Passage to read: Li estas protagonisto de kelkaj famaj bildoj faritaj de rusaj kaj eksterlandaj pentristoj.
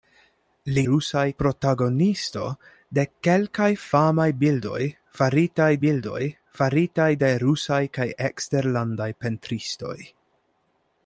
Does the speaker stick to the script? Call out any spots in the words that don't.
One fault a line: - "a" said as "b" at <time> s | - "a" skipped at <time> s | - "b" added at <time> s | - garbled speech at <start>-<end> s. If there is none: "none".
- "estas" said as "rusaj" at 0.9 s
- "bildoj faritaj" added at 5.8 s